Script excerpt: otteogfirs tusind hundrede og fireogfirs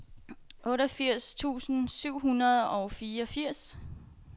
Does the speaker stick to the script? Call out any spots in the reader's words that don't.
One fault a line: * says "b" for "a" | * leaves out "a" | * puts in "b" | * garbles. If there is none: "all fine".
* puts in "syv"